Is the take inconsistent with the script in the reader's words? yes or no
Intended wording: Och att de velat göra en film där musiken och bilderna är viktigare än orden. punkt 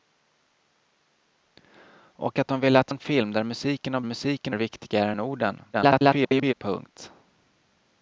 yes